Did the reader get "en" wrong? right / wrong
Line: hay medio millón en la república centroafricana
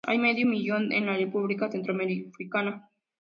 right